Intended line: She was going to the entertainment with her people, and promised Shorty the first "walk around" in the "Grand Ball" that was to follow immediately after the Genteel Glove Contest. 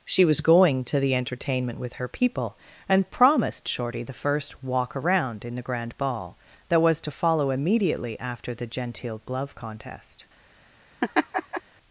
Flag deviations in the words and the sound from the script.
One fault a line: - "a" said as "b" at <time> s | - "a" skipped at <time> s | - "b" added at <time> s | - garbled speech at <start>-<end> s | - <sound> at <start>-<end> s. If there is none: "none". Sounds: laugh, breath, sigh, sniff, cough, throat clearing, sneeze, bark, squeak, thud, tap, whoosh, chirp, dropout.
- laugh at 11.0-11.6 s